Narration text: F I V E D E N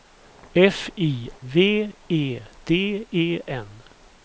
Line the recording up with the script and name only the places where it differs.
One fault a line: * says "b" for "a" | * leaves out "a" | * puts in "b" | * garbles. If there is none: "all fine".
all fine